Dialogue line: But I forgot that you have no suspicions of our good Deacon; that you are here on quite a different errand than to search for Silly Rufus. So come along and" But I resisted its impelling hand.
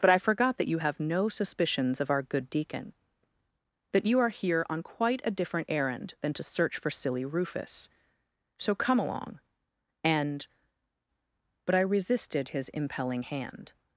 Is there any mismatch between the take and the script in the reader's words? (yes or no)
yes